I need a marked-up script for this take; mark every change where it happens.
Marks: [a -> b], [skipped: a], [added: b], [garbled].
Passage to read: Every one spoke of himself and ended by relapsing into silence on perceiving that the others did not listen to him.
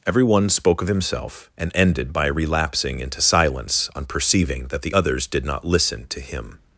Every one spoke of himself and ended by relapsing into silence on perceiving that the others did not listen to him.